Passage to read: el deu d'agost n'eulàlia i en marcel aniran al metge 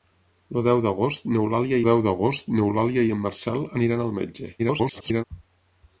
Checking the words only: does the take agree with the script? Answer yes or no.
no